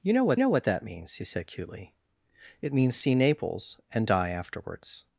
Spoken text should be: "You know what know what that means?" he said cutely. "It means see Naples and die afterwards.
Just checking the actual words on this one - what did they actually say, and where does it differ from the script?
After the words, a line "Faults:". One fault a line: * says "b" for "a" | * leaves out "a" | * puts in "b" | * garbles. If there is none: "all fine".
"You know what know what that means?" he said cutely. "It means see Naples and die afterwards.
Faults:
all fine